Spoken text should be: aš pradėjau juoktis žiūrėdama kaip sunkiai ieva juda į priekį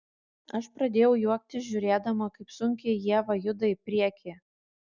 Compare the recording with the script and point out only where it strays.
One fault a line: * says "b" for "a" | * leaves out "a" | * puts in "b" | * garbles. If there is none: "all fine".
all fine